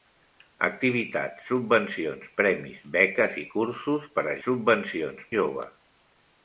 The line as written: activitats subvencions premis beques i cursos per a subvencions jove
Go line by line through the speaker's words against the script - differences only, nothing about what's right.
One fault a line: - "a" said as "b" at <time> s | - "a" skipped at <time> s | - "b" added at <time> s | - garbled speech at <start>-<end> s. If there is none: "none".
none